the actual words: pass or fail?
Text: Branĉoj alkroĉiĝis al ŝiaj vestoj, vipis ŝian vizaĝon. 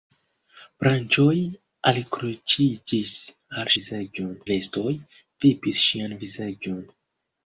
fail